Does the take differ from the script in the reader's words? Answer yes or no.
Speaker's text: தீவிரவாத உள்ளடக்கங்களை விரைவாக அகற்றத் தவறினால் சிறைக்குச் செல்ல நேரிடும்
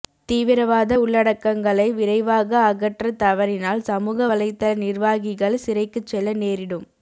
yes